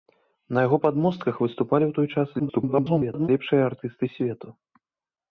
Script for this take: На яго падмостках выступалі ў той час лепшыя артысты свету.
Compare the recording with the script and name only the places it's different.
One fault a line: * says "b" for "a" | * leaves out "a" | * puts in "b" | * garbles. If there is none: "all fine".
* garbles